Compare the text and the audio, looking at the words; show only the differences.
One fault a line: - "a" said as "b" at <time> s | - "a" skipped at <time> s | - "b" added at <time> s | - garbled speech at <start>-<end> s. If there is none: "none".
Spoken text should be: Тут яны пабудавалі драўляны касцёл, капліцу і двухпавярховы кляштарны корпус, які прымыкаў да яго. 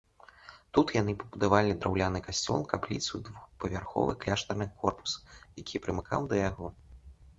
none